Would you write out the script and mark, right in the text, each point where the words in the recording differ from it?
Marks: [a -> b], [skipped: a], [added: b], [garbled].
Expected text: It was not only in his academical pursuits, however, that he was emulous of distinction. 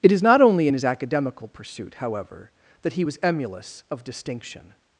It [was -> is] not only in his academical [pursuits, -> pursuit] however, that he was emulous of distinction.